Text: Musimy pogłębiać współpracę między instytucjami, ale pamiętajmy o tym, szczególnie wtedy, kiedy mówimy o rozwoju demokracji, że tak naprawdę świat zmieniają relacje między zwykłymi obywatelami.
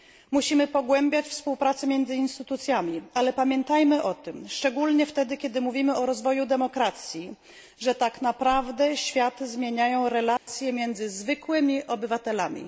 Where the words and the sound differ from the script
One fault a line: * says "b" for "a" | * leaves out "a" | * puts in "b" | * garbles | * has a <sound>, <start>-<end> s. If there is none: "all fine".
* has a dropout, 10.4-10.5 s